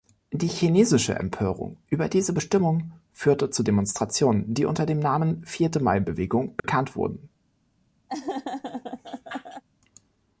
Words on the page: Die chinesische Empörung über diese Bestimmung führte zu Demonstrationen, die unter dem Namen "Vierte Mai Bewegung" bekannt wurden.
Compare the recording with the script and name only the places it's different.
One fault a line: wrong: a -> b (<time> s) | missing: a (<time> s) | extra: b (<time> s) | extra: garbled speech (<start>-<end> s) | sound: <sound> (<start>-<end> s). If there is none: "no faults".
sound: dropout (6.6-6.6 s)
sound: laugh (8.1-9.6 s)